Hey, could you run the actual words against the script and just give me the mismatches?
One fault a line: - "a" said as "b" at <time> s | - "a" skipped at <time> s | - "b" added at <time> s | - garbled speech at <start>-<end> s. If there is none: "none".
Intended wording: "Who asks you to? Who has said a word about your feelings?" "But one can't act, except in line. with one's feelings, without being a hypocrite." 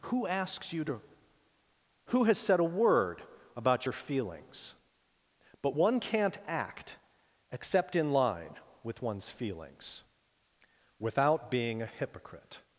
none